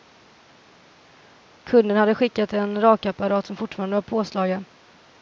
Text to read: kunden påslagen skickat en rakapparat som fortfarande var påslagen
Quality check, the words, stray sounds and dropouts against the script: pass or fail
fail